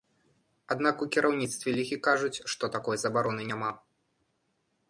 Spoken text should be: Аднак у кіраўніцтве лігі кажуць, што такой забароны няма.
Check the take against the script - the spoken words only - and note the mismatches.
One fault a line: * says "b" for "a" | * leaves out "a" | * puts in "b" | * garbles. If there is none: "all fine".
all fine